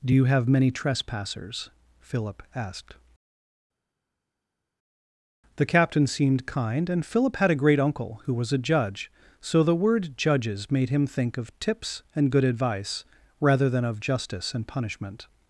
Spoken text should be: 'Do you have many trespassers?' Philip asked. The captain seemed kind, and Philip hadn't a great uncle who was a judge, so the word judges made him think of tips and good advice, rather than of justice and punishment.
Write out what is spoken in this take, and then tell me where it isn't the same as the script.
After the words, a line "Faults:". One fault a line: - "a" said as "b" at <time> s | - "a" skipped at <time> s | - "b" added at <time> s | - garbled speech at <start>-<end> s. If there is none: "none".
'Do you have many trespassers?' Philip asked. The captain seemed kind, and Philip had a great uncle who was a judge, so the word judges made him think of tips and good advice, rather than of justice and punishment.
Faults:
- "hadn't" said as "had" at 7.4 s